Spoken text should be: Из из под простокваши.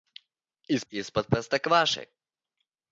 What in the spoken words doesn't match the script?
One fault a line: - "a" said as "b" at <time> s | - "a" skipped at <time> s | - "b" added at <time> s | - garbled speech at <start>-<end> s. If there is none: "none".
none